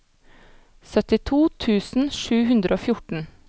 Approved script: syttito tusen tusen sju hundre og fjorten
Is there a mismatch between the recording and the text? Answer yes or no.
yes